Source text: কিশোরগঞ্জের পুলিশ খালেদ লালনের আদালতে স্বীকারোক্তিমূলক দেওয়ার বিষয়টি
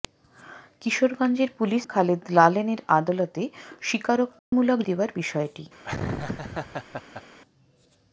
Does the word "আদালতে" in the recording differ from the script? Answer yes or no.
no